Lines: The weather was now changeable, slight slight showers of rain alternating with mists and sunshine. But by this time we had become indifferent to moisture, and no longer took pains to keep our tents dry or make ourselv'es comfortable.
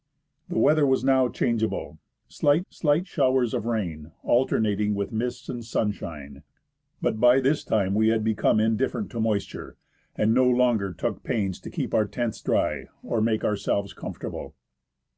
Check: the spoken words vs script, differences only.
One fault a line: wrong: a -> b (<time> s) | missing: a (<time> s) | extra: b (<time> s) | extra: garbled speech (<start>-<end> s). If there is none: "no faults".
no faults